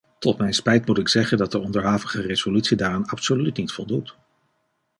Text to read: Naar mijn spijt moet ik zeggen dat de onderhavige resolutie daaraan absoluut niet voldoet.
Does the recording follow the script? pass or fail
fail